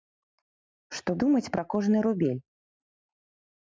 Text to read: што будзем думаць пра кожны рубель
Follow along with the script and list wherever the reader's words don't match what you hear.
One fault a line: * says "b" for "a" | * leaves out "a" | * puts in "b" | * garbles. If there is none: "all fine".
* leaves out "будзем"